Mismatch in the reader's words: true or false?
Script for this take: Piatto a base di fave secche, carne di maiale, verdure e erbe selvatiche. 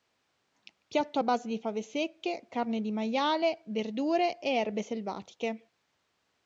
false